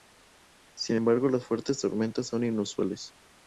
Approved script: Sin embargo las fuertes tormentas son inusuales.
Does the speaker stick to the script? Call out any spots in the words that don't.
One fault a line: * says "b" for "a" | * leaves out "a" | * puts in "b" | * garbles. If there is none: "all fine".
all fine